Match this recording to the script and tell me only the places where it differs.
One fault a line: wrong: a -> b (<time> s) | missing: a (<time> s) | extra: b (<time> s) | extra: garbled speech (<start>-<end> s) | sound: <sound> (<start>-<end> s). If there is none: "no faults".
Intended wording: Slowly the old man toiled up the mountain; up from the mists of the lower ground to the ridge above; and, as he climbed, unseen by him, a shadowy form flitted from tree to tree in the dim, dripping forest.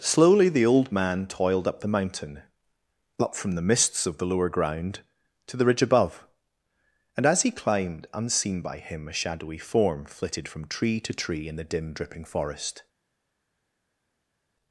no faults